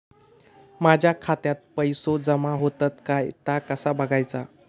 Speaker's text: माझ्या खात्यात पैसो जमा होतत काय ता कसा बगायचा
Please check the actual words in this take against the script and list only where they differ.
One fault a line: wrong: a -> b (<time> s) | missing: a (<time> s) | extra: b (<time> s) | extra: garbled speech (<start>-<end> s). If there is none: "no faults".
no faults